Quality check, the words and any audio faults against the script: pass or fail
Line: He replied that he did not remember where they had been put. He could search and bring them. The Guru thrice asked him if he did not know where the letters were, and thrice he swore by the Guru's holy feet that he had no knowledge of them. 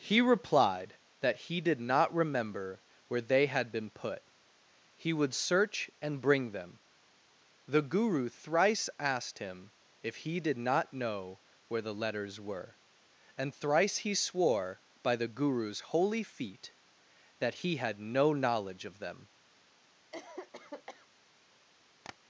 fail